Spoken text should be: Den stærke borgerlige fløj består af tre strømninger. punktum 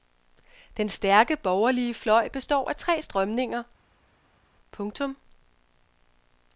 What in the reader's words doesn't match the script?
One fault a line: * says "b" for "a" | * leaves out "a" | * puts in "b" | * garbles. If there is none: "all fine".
all fine